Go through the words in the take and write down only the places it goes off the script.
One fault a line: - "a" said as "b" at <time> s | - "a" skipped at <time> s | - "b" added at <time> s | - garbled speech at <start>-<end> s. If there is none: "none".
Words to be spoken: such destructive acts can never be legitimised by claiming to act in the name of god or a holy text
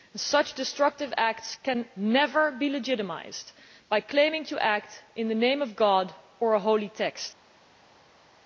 none